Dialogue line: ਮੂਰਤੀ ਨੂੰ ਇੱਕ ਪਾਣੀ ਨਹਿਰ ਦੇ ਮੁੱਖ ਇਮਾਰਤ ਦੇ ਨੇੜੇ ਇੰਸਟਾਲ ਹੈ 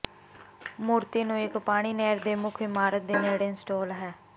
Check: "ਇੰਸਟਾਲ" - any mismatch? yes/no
no